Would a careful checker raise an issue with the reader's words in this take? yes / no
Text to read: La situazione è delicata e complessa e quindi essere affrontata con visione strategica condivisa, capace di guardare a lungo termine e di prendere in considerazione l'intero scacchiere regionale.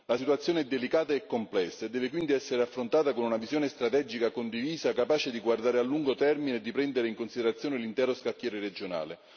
yes